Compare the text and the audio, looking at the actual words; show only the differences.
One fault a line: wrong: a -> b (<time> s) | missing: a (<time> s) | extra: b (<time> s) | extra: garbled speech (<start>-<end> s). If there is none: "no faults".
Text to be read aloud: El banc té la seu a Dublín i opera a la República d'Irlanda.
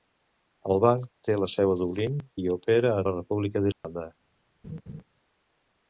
no faults